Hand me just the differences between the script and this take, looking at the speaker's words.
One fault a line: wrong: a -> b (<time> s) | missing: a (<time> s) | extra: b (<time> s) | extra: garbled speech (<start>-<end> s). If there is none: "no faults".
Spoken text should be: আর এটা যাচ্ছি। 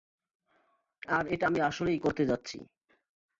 extra: আমি আসলেই করতে (1.5 s)